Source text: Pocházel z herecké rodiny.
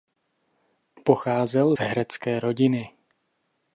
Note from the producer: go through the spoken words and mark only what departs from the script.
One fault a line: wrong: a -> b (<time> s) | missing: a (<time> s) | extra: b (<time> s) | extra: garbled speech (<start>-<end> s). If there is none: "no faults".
no faults